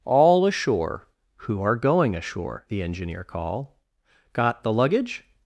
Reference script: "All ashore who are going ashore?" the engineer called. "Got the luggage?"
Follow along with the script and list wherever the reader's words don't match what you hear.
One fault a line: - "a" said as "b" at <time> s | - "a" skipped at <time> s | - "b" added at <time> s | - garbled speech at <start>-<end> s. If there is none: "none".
- "called" said as "call" at 3.2 s